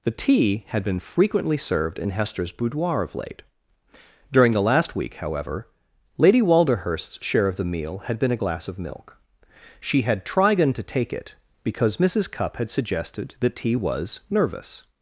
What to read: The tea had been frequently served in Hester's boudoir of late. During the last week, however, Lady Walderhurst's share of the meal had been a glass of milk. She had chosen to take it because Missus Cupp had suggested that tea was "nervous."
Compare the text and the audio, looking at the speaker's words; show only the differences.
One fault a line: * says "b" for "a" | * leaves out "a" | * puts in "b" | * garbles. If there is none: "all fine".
* says "trigon" for "chosen"